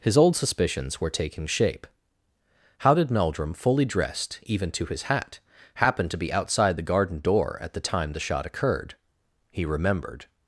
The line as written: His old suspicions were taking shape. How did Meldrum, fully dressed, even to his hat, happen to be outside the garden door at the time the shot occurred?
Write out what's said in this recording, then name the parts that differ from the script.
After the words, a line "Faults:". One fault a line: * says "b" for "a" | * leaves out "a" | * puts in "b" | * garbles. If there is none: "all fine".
His old suspicions were taking shape. How did Meldrum, fully dressed, even to his hat, happen to be outside the garden door at the time the shot occurred? He remembered
Faults:
* puts in "He remembered"